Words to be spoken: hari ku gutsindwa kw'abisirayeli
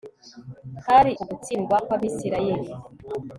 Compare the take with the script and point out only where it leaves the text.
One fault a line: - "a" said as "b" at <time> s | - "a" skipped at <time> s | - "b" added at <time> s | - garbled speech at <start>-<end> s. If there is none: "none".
none